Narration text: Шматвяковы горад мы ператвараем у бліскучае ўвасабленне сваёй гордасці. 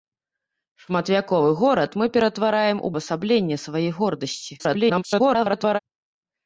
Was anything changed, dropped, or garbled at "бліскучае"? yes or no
yes